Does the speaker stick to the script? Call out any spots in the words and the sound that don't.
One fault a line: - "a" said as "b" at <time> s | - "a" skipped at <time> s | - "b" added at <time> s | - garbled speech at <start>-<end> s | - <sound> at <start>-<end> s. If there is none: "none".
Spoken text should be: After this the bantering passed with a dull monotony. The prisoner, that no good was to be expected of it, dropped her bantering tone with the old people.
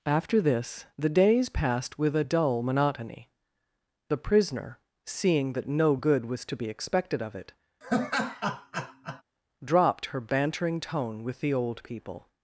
- "bantering" said as "days" at 1.1 s
- "seeing" added at 5.1 s
- laugh at 7.8-9.2 s